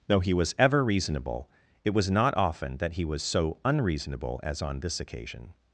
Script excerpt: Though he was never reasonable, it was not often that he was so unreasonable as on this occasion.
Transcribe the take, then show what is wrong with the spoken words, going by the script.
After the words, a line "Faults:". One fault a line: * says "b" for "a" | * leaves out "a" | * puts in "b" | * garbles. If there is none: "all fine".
Though he was ever reasonable, it was not often that he was so unreasonable as on this occasion.
Faults:
* says "ever" for "never"